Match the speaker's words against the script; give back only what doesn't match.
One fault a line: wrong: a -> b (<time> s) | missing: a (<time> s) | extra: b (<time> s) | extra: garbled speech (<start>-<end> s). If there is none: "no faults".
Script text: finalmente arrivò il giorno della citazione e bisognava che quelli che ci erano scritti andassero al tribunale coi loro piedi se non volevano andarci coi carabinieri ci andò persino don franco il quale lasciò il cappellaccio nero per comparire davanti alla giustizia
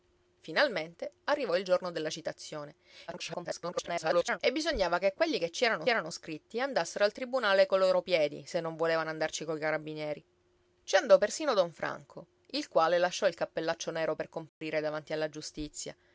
extra: garbled speech (3.1-4.4 s)
extra: erano (5.9 s)